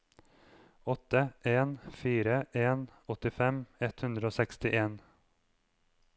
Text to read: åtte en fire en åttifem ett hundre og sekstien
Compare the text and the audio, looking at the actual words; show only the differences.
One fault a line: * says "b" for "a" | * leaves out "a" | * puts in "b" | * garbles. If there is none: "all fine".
all fine